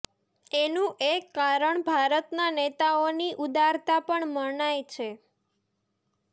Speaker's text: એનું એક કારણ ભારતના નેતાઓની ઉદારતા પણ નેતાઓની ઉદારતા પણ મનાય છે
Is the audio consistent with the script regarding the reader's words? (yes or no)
no